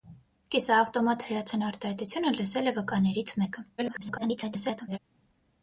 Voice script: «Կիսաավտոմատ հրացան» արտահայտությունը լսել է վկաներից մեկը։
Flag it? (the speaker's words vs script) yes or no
yes